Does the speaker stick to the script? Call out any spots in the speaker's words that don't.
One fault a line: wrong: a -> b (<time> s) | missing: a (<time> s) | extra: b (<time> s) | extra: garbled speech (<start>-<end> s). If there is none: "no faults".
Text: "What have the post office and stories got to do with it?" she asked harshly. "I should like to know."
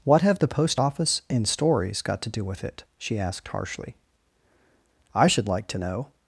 no faults